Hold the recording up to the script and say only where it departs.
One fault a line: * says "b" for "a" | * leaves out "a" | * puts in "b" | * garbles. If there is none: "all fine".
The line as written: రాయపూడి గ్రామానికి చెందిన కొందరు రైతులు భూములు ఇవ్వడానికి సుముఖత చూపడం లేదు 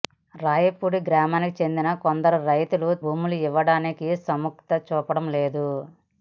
all fine